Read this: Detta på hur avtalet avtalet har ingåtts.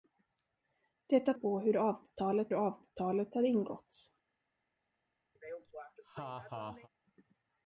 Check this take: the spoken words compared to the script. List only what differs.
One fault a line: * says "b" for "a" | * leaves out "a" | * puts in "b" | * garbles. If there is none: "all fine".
all fine